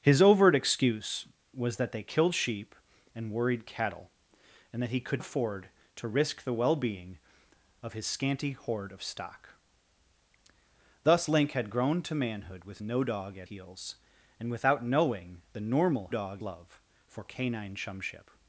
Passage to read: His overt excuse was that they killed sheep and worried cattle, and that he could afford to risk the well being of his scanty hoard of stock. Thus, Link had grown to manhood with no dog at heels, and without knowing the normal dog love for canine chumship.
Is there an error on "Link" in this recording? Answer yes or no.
no